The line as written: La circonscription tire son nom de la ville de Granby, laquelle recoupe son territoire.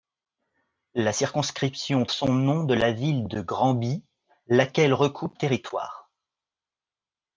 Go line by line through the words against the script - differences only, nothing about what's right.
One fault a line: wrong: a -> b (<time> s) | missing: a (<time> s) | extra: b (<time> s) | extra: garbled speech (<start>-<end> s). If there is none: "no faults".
missing: tire (2.1 s)
missing: son (5.4 s)